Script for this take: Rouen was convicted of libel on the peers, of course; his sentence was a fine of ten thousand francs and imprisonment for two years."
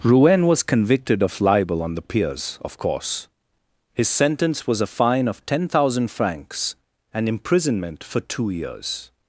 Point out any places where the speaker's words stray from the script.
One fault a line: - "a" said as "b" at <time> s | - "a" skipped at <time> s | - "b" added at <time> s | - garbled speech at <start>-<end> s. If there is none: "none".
none